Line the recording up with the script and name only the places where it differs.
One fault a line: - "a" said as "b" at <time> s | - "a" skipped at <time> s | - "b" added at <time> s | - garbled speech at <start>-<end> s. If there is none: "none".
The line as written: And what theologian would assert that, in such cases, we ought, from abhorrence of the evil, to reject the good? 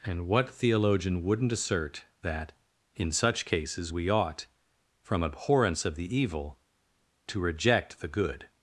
- "would" said as "wouldn't" at 1.2 s